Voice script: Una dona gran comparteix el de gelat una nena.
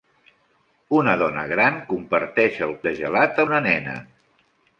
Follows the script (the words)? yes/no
yes